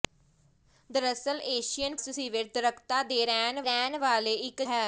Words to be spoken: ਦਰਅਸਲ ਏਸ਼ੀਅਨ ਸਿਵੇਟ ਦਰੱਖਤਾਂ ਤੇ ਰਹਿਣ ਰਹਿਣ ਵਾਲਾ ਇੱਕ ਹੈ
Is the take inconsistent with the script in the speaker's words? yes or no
no